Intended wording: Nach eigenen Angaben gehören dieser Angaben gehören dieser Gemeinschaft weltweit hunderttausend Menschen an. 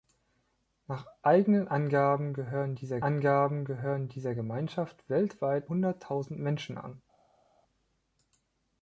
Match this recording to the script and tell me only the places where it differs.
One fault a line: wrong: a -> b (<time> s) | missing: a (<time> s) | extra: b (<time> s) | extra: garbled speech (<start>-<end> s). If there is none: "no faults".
no faults